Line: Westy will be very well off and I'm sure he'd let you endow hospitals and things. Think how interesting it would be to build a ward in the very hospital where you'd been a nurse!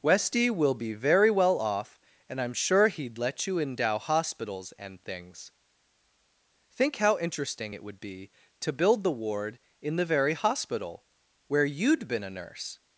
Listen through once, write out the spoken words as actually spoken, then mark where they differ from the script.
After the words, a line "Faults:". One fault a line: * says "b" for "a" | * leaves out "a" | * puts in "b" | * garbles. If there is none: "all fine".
Westy will be very well off and I'm sure he'd let you endow hospitals and things. Think how interesting it would be to build the ward in the very hospital where you'd been a nurse!
Faults:
* says "the" for "a"